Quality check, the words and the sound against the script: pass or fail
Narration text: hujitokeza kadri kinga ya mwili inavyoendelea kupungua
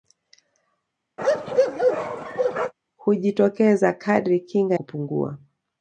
fail